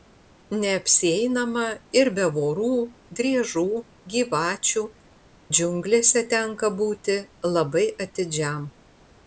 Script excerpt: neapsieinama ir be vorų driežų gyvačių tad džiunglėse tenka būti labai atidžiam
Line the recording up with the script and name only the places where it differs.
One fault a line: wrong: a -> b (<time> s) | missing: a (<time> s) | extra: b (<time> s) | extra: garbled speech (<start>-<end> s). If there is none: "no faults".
missing: tad (4.8 s)